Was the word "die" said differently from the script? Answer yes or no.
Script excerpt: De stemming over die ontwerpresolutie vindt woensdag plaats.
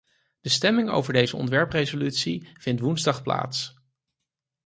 yes